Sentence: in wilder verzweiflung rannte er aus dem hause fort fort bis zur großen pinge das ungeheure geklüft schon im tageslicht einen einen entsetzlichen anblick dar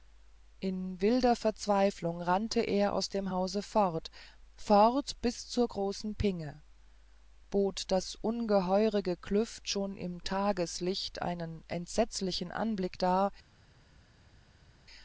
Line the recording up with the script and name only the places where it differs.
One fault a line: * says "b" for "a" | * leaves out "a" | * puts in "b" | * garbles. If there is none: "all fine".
* puts in "bot"
* leaves out "einen"